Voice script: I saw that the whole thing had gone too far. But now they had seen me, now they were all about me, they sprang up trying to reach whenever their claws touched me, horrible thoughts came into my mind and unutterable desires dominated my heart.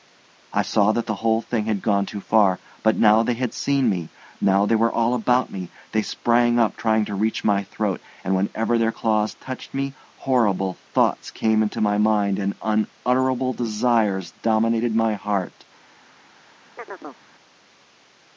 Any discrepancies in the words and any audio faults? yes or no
yes